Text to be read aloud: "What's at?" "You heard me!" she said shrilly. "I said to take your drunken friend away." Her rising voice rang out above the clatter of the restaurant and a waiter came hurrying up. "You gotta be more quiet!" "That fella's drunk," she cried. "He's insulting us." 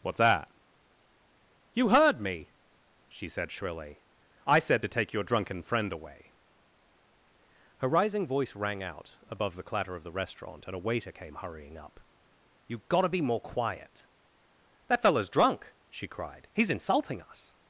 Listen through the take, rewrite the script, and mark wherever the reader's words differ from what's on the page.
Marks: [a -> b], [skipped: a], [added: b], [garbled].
"What's [at?" -> that] "You heard me!" she said shrilly. "I said to take your drunken friend away." Her rising voice rang out above the clatter of the restaurant and a waiter came hurrying up. "You gotta be more quiet!" "That fella's drunk," she cried. "He's insulting us."